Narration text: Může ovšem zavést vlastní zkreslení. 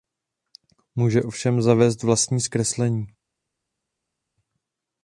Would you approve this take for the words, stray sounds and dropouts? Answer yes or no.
yes